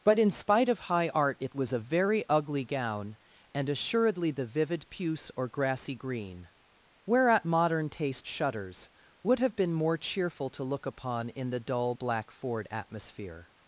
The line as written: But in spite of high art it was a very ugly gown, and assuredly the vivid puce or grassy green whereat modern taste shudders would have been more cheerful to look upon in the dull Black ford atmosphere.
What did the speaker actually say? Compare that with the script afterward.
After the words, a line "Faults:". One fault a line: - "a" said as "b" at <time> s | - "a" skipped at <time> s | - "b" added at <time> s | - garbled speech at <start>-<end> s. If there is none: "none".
But in spite of high art it was a very ugly gown, and assuredly the vivid puce or grassy green whereat modern taste shudders would have been more cheerful to look upon in the dull Black ford atmosphere.
Faults:
none